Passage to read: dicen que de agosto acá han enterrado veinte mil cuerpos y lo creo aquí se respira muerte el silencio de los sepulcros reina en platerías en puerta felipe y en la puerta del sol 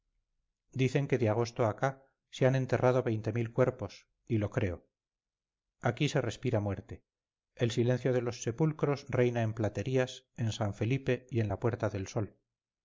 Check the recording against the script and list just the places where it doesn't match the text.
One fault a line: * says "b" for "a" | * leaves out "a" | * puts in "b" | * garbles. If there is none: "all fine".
* puts in "se"
* says "san" for "puerta"